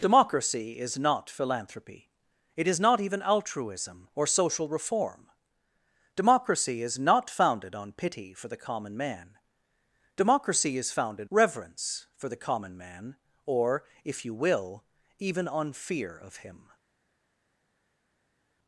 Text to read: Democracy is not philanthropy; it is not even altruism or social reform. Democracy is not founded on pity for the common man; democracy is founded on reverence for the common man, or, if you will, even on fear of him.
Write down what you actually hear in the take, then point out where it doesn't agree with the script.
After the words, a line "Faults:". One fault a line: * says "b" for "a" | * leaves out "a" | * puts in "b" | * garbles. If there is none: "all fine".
Democracy is not philanthropy; it is not even altruism or social reform. Democracy is not founded on pity for the common man; democracy is founded reverence for the common man, or, if you will, even on fear of him.
Faults:
* leaves out "on"